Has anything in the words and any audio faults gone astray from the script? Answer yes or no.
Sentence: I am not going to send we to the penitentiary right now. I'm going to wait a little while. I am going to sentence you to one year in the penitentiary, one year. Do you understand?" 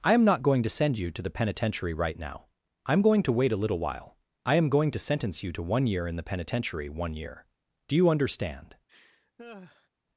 yes